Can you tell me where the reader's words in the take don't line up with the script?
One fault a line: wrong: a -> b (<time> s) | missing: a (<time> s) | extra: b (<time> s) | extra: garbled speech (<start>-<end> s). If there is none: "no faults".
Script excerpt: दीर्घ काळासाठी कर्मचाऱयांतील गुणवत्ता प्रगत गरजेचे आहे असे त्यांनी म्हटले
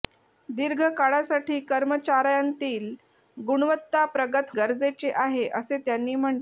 no faults